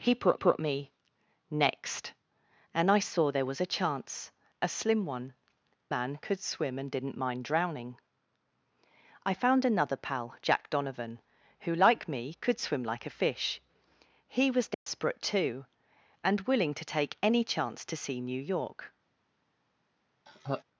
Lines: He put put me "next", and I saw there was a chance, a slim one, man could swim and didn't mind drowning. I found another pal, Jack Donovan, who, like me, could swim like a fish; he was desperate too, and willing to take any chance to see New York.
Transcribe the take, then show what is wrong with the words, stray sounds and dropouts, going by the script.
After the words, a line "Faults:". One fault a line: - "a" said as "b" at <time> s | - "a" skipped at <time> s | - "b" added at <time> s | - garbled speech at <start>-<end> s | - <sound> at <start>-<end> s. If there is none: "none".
He put put me "next", and I saw there was a chance, a slim one, man could swim and didn't mind drowning. I found another pal, Jack Donovan, who, like me, could swim like a fish; he was desperate too, and willing to take any chance to see New York.
Faults:
- dropout at 14.7-14.9 s
- laugh at 20.3-20.6 s